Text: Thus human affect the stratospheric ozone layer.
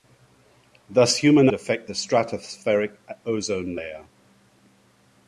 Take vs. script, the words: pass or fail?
pass